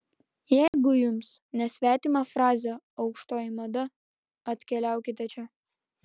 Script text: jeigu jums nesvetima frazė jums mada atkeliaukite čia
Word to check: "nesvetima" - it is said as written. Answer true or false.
true